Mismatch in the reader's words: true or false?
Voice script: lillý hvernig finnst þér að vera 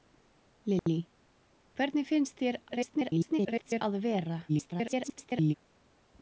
true